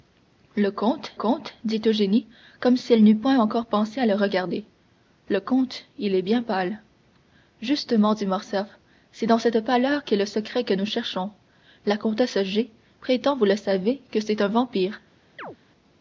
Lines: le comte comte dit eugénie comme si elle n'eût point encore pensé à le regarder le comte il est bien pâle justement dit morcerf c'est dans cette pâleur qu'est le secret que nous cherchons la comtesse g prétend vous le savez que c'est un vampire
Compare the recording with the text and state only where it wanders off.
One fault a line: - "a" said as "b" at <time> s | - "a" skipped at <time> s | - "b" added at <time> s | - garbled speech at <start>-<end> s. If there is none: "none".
none